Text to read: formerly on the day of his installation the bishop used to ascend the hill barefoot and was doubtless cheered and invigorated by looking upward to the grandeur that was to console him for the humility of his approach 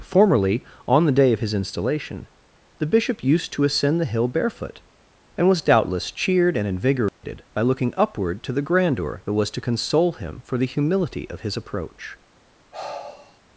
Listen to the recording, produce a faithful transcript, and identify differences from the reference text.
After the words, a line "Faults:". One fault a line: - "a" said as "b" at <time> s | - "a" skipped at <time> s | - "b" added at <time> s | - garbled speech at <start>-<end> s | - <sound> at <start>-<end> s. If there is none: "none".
formerly on the day of his installation the bishop used to ascend the hill barefoot and was doubtless cheered and invigorated by looking upward to the grandeur that was to console him for the humility of his approach
Faults:
- dropout at 7.1-7.2 s
- sigh at 12.7-13.4 s